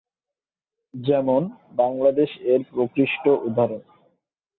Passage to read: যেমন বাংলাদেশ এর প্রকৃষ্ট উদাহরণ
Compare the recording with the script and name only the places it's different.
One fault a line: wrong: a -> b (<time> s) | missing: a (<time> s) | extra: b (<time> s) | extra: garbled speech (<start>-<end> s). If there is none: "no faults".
no faults